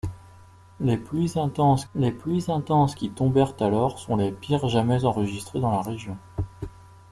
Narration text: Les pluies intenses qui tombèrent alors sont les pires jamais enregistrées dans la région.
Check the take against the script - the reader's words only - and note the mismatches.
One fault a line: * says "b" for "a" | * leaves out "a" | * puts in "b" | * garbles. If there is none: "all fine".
* puts in "les pluies intenses"